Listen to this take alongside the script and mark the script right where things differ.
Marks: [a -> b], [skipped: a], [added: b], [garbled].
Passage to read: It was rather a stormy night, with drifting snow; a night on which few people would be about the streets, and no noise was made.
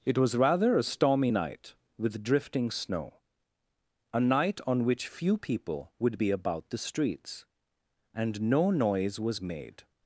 It was rather a stormy night, with drifting snow; a night on which few people would be about the streets, and no noise was made.